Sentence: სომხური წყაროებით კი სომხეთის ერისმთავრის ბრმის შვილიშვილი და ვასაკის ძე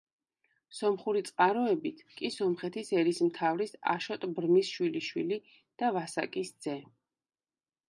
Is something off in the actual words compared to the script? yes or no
yes